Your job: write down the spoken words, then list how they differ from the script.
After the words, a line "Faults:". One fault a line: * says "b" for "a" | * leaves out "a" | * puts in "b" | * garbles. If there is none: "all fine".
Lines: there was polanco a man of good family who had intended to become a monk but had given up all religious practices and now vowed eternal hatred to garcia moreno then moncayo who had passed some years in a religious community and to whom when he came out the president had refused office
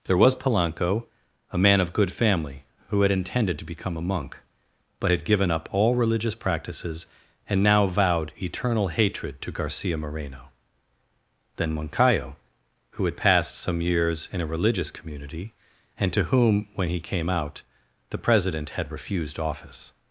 there was polanco a man of good family who had intended to become a monk but had given up all religious practices and now vowed eternal hatred to garcia moreno then moncayo who had passed some years in a religious community and to whom when he came out the president had refused office
Faults:
all fine